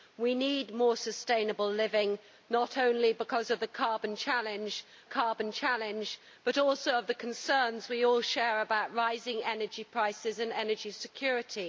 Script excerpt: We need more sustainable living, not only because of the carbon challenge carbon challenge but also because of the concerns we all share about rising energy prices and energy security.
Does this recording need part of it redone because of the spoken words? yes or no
no